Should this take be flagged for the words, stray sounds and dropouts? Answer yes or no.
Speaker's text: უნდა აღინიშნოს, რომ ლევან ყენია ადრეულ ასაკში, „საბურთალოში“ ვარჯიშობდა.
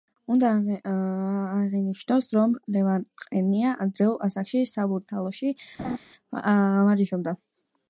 yes